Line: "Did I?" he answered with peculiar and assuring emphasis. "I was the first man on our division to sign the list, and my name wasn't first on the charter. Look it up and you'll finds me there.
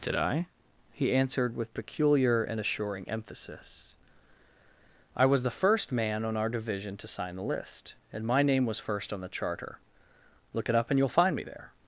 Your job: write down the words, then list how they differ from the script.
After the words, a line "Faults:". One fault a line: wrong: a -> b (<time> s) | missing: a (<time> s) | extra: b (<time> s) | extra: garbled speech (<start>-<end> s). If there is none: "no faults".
"Did I?" he answered with peculiar and assuring emphasis. "I was the first man on our division to sign the list, and my name was first on the charter. Look it up and you'll find me there.
Faults:
wrong: wasn't -> was (8.6 s)
wrong: finds -> find (11.1 s)